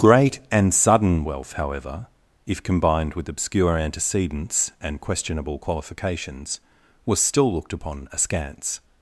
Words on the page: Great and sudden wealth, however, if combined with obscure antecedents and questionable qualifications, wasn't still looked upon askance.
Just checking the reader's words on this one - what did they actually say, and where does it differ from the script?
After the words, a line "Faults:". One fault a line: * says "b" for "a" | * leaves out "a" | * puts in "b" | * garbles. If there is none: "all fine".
Great and sudden wealth, however, if combined with obscure antecedents and questionable qualifications, was still looked upon askance.
Faults:
* says "was" for "wasn't"